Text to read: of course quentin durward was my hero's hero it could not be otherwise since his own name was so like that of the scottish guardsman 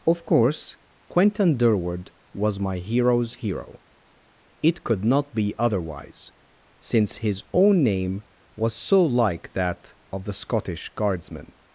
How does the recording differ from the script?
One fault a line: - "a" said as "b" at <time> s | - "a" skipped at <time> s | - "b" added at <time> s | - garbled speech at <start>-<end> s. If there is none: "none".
none